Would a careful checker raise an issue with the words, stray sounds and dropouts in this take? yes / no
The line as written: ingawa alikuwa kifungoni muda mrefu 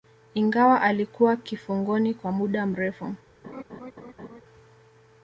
yes